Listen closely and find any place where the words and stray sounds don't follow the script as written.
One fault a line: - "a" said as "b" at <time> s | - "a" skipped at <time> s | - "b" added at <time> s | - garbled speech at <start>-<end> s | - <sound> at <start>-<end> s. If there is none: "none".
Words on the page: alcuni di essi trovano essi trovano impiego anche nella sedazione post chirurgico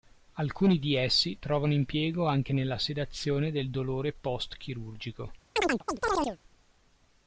- "essi trovano" skipped at 1.7 s
- "del dolore" added at 3.5 s
- chirp at 5.6-6.4 s